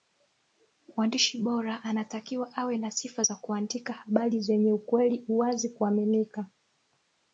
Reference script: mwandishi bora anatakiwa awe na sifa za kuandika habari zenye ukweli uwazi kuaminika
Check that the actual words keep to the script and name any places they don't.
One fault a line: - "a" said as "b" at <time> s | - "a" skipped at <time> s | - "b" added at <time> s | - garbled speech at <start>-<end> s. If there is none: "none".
none